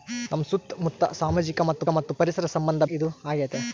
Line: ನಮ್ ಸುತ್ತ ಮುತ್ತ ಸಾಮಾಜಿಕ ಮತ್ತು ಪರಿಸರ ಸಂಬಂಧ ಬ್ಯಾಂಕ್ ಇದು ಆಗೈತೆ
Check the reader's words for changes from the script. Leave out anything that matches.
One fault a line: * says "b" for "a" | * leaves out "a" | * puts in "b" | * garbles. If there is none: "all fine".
* puts in "ಮತ್ತು"
* leaves out "ಬ್ಯಾಂಕ್"